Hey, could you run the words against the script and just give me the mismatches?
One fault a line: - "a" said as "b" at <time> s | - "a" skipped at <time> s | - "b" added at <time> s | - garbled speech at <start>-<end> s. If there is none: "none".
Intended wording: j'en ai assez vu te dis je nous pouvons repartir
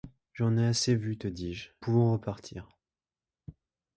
- "nous" skipped at 1.7 s